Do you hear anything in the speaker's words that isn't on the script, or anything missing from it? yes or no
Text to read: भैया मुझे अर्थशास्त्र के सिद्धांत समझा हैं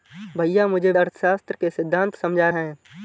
no